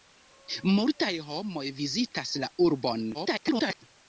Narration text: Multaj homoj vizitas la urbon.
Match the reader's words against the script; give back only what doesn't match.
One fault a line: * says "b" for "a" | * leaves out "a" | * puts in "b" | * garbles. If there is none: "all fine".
* garbles